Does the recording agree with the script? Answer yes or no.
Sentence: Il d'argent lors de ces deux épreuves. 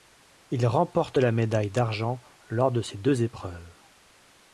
no